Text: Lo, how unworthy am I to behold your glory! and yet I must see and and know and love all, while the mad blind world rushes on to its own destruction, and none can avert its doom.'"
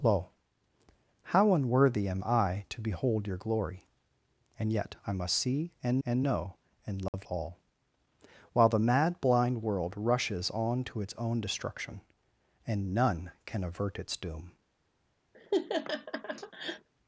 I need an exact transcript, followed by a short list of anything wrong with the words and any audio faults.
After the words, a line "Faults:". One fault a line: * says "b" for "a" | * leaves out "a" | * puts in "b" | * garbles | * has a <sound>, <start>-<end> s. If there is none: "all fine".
Lo, how unworthy am I to behold your glory! and yet I must see and and know and love all, while the mad blind world rushes on to its own destruction, and none can avert its doom.'"
Faults:
* has a dropout, 7.1-7.1 s
* has a laugh, 15.3-16.9 s